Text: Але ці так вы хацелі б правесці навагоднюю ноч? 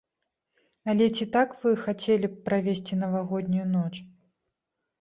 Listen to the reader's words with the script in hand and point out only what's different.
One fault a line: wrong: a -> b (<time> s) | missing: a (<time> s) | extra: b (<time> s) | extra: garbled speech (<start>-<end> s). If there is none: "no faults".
no faults